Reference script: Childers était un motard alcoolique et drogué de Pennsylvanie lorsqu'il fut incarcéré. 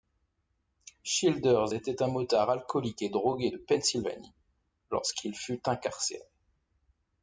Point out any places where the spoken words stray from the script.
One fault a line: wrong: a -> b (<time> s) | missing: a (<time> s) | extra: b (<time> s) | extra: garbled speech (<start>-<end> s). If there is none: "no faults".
no faults